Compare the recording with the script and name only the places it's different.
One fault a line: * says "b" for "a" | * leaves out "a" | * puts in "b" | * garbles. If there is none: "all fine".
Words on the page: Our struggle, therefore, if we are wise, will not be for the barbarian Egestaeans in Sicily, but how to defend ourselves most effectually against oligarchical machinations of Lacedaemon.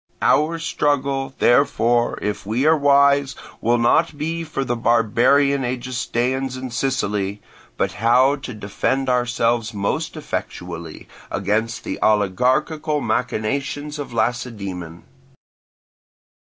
* puts in "the"